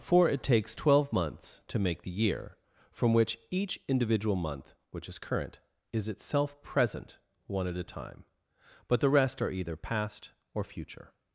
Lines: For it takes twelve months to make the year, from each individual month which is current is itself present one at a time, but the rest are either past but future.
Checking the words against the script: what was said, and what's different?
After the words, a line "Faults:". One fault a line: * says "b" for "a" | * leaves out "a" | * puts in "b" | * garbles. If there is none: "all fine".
For it takes twelve months to make the year, from which each individual month which is current is itself present one at a time, but the rest are either past or future.
Faults:
* puts in "which"
* says "or" for "but"